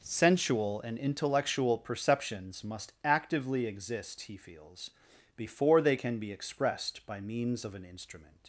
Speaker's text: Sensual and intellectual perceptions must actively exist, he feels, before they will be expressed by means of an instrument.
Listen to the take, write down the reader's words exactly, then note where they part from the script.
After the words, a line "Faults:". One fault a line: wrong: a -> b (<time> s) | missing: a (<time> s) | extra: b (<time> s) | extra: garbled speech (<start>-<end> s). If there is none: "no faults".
Sensual and intellectual perceptions must actively exist, he feels, before they can be expressed by means of an instrument.
Faults:
wrong: will -> can (5.9 s)